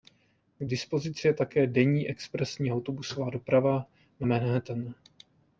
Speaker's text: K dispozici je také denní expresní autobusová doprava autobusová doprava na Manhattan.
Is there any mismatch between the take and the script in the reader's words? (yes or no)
yes